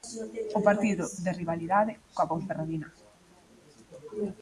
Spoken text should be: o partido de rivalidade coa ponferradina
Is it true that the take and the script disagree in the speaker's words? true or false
false